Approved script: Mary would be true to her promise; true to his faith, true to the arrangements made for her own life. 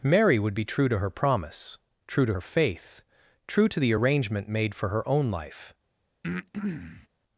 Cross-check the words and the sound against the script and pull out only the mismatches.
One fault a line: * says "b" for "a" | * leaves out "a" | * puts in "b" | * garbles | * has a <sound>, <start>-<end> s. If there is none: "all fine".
* says "her" for "his"
* says "arrangement" for "arrangements"
* has a breath, 6.2-7.1 s